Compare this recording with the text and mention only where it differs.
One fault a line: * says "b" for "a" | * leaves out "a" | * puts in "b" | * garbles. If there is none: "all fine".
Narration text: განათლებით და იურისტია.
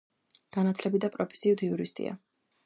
* puts in "პროფესიით"